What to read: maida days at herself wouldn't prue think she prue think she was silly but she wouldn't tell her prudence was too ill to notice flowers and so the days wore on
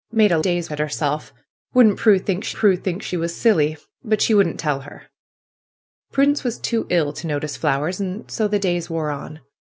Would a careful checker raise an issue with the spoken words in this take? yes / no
no